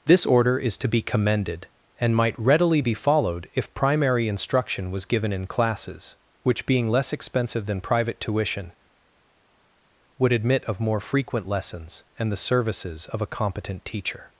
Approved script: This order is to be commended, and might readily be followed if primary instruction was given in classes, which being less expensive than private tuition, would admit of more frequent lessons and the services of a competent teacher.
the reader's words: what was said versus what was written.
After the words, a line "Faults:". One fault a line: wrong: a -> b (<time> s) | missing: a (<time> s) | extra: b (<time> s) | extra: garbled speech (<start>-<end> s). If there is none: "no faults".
This order is to be commended, and might readily be followed if primary instruction was given in classes, which being less expensive than private tuition, would admit of more frequent lessons and the services of a competent teacher.
Faults:
no faults